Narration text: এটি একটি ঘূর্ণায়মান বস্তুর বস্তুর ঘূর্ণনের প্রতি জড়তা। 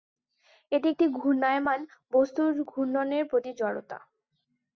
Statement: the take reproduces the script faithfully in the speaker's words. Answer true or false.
false